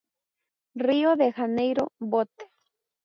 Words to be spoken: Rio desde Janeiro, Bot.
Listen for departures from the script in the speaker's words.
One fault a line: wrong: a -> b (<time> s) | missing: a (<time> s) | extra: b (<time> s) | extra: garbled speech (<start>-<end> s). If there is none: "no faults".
wrong: desde -> de (1.1 s)